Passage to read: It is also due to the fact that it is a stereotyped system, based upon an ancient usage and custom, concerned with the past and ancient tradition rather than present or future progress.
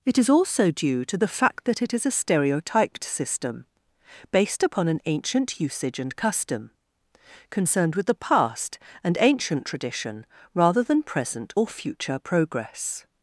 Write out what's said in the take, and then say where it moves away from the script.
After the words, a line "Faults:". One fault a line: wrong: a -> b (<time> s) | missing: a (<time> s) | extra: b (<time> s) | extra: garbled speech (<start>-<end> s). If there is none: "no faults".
It is also due to the fact that it is a stereotyped system, based upon an ancient usage and custom, concerned with the past and ancient tradition rather than present or future progress.
Faults:
no faults